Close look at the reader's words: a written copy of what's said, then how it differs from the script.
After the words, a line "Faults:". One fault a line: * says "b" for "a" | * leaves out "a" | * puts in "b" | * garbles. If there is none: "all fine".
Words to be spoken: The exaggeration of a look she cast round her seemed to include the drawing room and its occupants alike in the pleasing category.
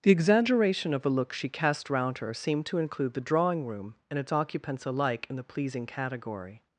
The exaggeration of a look she cast round her seemed to include the drawing room and its occupants alike in the pleasing category.
Faults:
all fine